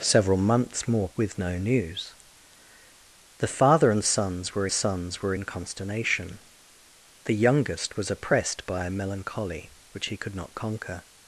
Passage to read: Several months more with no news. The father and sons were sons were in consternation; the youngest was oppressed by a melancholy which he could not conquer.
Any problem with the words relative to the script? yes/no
no